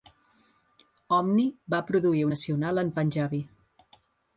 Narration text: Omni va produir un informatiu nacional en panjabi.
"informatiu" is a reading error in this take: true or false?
true